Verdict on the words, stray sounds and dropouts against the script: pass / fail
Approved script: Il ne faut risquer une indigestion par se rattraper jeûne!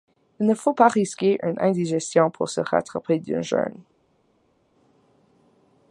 fail